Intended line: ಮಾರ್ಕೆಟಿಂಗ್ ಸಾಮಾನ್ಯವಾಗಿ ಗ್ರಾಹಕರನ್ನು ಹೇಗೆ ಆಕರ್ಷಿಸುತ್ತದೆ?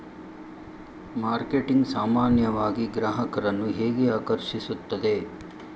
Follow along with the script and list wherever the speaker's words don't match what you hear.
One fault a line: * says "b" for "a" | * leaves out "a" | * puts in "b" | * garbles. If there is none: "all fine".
all fine